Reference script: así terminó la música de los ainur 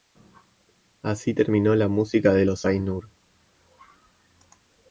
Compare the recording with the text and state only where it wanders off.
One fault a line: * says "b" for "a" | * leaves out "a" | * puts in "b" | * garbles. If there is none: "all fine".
all fine